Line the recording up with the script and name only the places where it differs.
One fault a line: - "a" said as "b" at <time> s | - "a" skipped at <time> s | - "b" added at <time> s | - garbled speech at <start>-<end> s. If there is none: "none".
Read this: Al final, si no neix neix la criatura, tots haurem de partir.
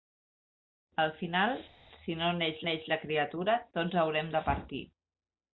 none